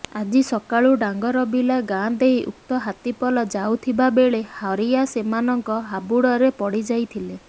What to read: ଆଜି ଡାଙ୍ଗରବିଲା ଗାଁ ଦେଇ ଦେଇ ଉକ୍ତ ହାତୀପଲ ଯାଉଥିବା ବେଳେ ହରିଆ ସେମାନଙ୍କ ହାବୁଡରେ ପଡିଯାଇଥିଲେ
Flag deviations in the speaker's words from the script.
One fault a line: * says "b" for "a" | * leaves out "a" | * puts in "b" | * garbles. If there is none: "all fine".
* puts in "ସକାଳୁ"
* leaves out "ଦେଇ"